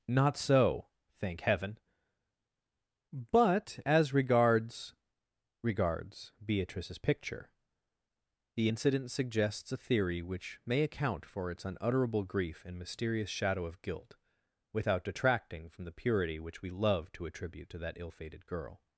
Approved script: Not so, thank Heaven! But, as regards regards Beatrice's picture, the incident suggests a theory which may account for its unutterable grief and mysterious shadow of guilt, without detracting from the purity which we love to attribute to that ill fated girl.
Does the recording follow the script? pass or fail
pass